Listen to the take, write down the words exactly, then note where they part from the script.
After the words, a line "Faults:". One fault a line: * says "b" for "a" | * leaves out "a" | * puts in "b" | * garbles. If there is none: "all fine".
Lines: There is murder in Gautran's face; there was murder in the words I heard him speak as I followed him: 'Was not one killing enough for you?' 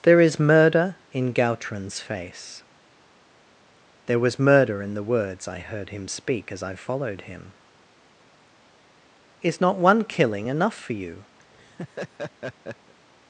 There is murder in Gautran's face; there was murder in the words I heard him speak as I followed him: 'Is not one killing enough for you?'
Faults:
* says "Is" for "Was"